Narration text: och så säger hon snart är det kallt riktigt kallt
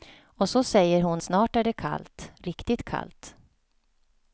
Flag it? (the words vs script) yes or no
no